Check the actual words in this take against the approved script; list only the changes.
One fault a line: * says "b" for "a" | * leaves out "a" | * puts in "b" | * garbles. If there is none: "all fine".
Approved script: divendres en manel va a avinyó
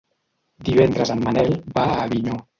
all fine